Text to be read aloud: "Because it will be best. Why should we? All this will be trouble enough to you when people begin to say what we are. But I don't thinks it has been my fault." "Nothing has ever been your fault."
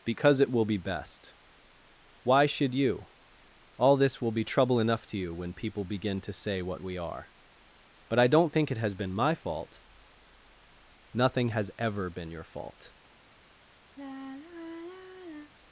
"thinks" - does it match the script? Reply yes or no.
no